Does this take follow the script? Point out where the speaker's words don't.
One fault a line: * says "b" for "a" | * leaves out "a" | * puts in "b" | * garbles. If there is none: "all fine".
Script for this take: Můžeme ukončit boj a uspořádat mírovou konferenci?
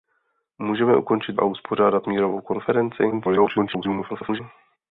* leaves out "boj"
* garbles